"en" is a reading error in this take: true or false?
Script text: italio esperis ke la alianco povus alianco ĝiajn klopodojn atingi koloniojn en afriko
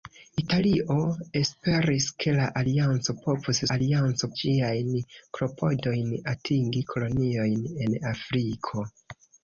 false